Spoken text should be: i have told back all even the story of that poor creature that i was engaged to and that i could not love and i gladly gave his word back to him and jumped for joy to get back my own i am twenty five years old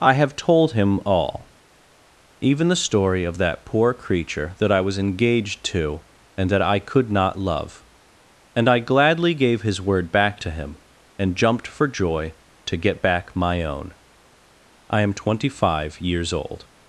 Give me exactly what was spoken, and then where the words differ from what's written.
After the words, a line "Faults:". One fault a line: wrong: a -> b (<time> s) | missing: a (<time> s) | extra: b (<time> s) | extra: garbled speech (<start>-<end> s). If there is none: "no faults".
i have told him all even the story of that poor creature that i was engaged to and that i could not love and i gladly gave his word back to him and jumped for joy to get back my own i am twenty five years old
Faults:
wrong: back -> him (0.7 s)